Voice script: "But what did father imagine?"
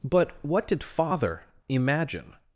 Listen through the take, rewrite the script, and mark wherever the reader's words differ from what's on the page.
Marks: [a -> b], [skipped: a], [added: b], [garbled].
"But what did father imagine?"